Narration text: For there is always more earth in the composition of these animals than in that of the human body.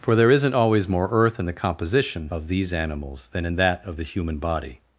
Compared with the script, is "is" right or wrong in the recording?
wrong